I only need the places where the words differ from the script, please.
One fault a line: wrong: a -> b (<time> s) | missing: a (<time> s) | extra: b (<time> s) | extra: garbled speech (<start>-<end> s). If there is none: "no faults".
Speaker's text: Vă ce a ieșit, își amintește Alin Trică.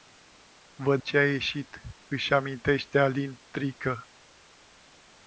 no faults